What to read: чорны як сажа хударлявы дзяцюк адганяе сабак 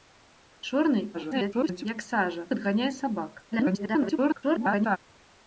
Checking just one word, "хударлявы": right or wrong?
wrong